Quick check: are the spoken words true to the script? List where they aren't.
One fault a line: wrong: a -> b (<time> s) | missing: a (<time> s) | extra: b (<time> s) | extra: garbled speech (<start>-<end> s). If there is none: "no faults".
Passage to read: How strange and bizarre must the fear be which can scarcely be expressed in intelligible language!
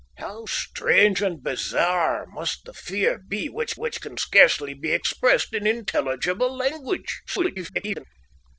extra: which (3.7 s)
extra: garbled speech (7.3-8.0 s)